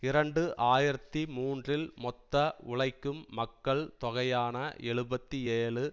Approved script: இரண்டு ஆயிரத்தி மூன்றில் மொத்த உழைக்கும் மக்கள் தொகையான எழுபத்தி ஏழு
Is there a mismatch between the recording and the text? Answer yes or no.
no